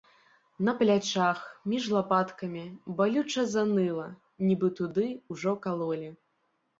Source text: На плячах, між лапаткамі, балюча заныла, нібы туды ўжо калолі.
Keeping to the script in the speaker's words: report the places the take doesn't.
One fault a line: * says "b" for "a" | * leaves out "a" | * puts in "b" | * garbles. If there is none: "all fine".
all fine